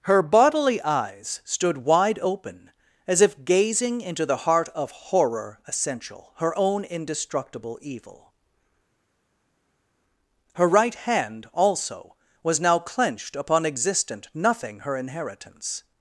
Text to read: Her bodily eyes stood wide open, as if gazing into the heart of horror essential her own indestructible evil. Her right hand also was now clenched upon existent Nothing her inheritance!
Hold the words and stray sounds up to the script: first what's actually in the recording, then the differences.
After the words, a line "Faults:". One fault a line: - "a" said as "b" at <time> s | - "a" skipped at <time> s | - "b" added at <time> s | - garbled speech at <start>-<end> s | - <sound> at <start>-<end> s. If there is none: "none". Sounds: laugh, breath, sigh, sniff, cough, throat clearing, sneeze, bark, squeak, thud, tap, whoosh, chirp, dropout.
Her bodily eyes stood wide open, as if gazing into the heart of horror essential her own indestructible evil. Her right hand also was now clenched upon existent Nothing her inheritance!
Faults:
none